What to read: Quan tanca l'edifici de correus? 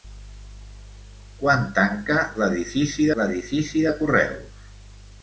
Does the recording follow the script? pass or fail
fail